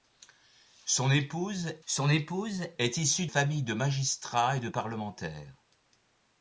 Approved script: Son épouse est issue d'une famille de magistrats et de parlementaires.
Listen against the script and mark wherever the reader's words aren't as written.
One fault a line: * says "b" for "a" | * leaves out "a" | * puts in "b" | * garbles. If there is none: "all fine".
* puts in "son épouse"
* leaves out "d'une"